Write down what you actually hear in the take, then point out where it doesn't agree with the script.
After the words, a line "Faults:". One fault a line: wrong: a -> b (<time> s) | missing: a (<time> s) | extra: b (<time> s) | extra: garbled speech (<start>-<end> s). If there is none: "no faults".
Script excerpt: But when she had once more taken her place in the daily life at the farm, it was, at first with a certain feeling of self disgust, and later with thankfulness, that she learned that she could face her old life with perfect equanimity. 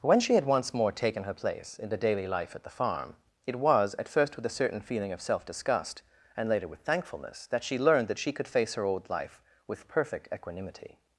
when she had once more taken her place in the daily life at the farm, it was, at first with a certain feeling of self disgust, and later with thankfulness, that she learned that she could face her old life with perfect equanimity.
Faults:
missing: But (0.0 s)